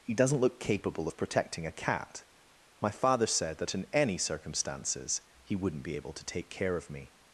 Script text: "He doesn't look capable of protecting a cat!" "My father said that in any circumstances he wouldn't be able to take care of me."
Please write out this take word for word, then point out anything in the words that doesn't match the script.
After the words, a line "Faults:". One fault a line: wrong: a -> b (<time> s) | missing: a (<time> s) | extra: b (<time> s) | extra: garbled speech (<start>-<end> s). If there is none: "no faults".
"He doesn't look capable of protecting a cat!" "My father said that in any circumstances he wouldn't be able to take care of me."
Faults:
no faults